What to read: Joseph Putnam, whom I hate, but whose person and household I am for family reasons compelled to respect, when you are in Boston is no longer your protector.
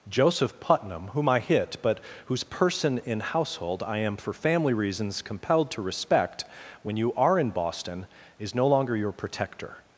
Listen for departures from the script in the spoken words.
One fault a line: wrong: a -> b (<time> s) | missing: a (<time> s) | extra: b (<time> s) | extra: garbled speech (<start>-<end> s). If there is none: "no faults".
wrong: hate -> hit (1.4 s)
wrong: and -> in (3.0 s)